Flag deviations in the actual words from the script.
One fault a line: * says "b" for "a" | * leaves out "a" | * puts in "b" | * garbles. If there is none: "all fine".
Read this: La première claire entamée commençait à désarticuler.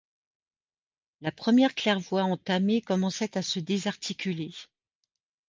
* puts in "voie"
* puts in "se"